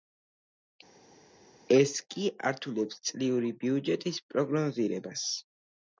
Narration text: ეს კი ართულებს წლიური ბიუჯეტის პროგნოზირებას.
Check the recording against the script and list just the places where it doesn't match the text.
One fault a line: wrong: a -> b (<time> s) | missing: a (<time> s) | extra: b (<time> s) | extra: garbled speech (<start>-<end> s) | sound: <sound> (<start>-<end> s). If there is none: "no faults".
no faults